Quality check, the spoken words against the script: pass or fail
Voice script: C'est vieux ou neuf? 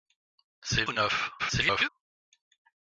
fail